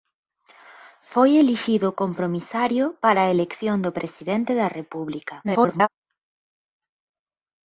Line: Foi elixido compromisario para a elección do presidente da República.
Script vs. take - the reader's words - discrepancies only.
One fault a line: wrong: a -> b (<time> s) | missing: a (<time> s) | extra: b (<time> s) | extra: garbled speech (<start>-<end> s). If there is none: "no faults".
extra: garbled speech (5.4-5.9 s)